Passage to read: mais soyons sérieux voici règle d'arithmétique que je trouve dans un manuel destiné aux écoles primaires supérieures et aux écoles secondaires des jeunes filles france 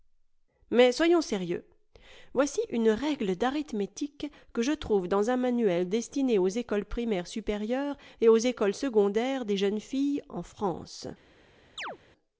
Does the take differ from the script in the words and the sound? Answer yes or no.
yes